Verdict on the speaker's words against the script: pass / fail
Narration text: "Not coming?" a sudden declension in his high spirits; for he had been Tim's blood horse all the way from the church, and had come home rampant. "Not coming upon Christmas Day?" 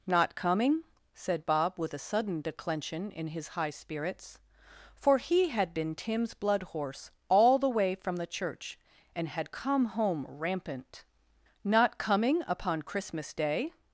fail